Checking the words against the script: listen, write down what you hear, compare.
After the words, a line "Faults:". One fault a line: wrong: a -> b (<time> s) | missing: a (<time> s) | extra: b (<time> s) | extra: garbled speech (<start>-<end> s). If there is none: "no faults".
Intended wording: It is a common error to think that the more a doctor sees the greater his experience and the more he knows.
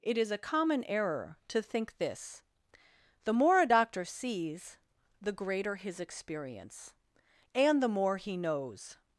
It is a common error to think this the more a doctor sees the greater his experience and the more he knows.
Faults:
wrong: that -> this (2.0 s)